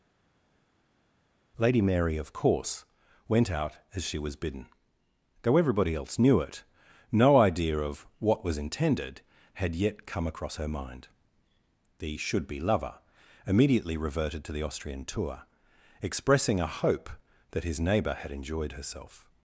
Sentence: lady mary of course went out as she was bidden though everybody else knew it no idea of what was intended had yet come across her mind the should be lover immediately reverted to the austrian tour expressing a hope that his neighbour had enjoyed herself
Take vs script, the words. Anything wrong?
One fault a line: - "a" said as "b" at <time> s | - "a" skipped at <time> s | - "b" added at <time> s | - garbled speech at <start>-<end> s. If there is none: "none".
none